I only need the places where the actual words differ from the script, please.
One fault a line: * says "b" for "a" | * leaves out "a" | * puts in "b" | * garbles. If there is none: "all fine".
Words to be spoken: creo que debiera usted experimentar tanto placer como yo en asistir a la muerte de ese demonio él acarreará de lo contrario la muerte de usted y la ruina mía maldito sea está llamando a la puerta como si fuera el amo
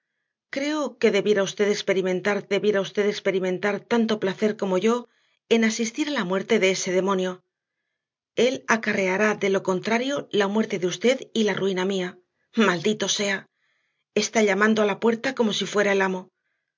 * puts in "debiera usted experimentar"